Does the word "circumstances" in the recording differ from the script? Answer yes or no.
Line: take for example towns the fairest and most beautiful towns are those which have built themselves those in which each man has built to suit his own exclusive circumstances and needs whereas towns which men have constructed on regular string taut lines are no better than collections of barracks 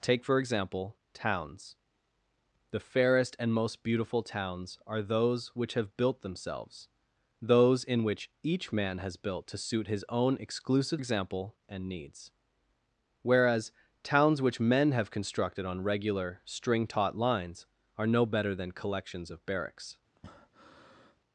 yes